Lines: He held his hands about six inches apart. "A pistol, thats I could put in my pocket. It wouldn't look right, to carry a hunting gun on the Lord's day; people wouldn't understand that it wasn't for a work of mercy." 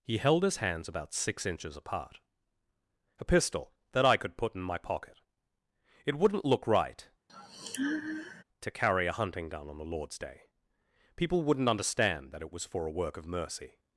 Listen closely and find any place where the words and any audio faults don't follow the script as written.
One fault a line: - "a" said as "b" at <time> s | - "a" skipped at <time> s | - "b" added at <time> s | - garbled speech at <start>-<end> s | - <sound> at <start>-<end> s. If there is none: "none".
- "thats" said as "that" at 3.9 s
- sigh at 7.3-8.4 s
- "wasn't" said as "was" at 12.5 s